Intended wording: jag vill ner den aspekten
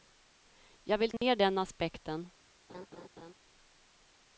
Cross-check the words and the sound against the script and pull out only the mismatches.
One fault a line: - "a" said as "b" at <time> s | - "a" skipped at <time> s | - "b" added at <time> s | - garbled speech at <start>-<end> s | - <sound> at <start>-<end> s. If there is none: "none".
- dropout at 1.2-1.2 s
- laugh at 2.7-3.3 s